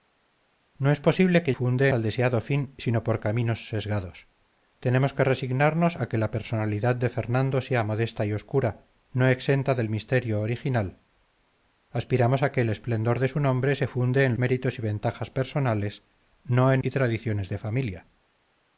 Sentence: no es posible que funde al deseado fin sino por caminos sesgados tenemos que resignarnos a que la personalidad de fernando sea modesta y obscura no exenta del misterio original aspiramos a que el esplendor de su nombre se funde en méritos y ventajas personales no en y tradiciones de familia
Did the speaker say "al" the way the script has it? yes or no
yes